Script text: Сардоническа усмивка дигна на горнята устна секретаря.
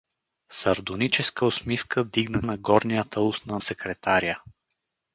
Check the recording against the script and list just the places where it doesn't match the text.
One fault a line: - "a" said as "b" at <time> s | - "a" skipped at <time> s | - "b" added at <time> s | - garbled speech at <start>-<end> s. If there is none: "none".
none